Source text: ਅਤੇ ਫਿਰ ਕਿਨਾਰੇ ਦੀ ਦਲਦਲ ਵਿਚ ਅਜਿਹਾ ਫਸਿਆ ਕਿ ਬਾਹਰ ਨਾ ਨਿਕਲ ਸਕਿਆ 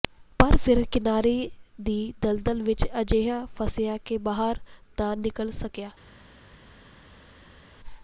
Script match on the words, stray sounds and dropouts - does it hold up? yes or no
no